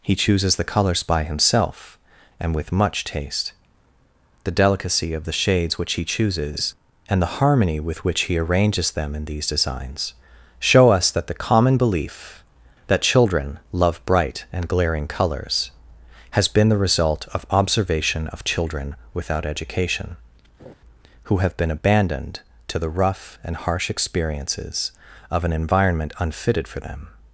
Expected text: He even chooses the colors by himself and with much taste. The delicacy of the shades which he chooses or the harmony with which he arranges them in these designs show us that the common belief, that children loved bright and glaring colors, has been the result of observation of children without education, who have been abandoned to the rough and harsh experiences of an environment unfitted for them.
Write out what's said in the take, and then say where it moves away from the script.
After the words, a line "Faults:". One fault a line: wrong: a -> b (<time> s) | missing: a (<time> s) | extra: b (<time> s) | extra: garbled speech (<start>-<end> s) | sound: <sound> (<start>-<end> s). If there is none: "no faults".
He chooses the colors by himself and with much taste. The delicacy of the shades which he chooses and the harmony with which he arranges them in these designs show us that the common belief, that children love bright and glaring colors, has been the result of observation of children without education, who have been abandoned to the rough and harsh experiences of an environment unfitted for them.
Faults:
missing: even (0.1 s)
wrong: or -> and (7.1 s)
wrong: loved -> love (13.7 s)
sound: laugh (20.6-20.7 s)